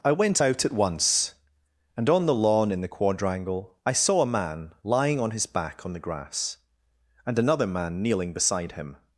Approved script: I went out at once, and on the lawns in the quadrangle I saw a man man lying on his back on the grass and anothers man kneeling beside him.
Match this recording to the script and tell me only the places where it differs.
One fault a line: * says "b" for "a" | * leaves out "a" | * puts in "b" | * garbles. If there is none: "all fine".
* says "lawn" for "lawns"
* leaves out "man"
* says "another" for "anothers"